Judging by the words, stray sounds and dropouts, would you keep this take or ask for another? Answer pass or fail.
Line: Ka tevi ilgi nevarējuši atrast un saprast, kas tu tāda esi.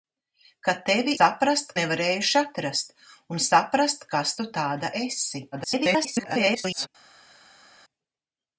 fail